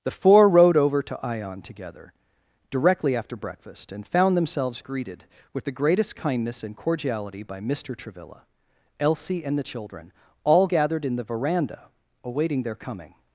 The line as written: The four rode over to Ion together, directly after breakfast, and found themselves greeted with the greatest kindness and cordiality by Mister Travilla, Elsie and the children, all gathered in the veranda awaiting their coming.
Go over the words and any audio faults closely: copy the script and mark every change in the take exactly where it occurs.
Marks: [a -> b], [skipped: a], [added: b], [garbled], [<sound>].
The four rode over to Ion together, directly after breakfast, and found themselves greeted with the greatest kindness and cordiality by Mister Travilla, Elsie and the children, all gathered in the veranda awaiting their coming.